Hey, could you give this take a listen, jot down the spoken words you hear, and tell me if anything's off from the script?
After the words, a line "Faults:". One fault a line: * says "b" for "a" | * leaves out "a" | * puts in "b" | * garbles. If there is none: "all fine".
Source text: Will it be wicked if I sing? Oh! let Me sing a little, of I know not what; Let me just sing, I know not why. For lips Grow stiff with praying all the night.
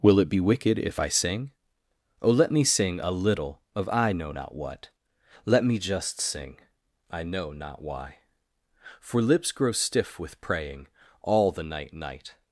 Will it be wicked if I sing? Oh! let Me sing a little, of I know not what; Let me just sing, I know not why. For lips Grow stiff with praying all the night night.
Faults:
* puts in "night"